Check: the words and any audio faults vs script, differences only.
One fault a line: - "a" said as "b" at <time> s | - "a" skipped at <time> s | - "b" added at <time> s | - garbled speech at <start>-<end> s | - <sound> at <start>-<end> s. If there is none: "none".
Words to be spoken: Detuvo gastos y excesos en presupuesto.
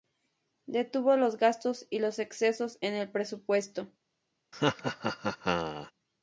- "los" added at 1.1 s
- "los" added at 2.0 s
- "el" added at 2.9 s
- laugh at 4.5-5.9 s